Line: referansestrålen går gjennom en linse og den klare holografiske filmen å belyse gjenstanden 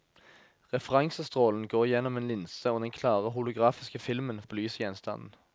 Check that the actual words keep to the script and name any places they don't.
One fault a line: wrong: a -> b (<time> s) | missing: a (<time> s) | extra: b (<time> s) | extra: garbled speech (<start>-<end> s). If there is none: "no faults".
no faults